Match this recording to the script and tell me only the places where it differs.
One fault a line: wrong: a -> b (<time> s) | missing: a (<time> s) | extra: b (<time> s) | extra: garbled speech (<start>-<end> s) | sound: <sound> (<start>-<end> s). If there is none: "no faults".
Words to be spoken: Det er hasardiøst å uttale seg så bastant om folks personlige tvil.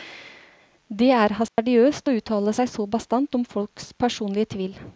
sound: dropout (1.5-1.6 s)